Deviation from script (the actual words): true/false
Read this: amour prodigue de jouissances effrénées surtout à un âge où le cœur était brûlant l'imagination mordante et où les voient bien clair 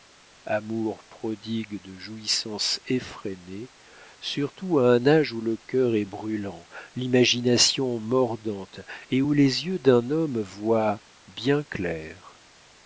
true